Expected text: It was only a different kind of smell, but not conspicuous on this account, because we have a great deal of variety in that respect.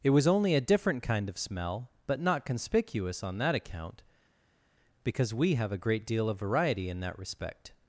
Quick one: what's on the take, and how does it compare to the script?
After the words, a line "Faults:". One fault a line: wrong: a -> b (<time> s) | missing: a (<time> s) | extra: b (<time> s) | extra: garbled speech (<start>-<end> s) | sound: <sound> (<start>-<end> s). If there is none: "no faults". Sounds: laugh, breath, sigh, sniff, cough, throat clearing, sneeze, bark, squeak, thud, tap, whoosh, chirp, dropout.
It was only a different kind of smell, but not conspicuous on that account, because we have a great deal of variety in that respect.
Faults:
wrong: this -> that (3.4 s)